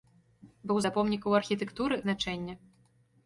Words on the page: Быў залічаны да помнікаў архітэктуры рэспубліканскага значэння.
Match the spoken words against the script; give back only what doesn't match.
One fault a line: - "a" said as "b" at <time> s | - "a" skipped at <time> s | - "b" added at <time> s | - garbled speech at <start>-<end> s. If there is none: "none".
- "залічаны" skipped at 0.8 s
- "рэспубліканскага" skipped at 2.0 s